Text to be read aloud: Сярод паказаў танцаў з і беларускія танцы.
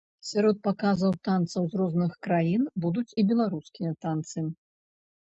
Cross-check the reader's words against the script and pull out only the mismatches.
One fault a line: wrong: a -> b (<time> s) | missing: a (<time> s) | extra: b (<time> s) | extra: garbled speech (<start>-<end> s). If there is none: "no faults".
extra: розных краін будуць (1.8 s)